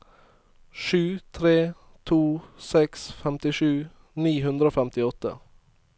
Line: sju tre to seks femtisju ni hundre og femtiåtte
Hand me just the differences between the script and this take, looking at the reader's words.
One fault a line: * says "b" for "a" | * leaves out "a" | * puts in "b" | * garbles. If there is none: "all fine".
all fine